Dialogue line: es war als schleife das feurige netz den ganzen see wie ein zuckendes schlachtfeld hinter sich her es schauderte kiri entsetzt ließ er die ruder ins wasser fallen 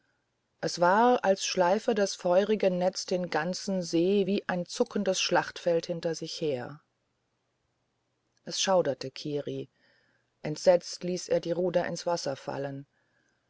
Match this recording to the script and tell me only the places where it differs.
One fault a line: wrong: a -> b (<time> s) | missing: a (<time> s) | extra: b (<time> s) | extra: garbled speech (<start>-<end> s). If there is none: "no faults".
no faults